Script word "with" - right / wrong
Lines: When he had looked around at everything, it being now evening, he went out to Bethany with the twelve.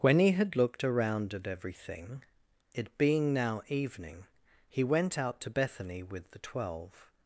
right